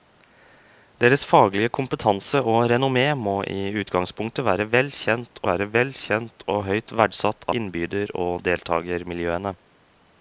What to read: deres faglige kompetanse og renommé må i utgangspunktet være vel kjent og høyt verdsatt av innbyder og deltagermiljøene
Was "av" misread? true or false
true